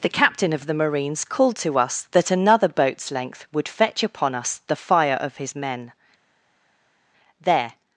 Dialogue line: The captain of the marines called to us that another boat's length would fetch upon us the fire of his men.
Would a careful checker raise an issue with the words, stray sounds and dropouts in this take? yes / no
yes